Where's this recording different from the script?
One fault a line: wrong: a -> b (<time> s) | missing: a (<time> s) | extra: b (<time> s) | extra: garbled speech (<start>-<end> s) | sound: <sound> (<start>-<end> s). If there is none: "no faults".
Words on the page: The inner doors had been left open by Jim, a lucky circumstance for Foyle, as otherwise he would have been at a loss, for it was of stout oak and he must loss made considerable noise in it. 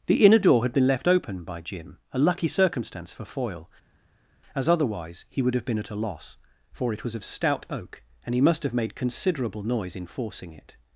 wrong: doors -> door (0.4 s)
wrong: loss -> have (8.6 s)
extra: forcing (10.1 s)